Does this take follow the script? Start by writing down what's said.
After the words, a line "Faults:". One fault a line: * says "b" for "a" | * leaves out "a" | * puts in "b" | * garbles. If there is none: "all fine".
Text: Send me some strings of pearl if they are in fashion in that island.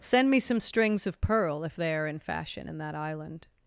Send me some strings of pearl if they are in fashion in that island.
Faults:
all fine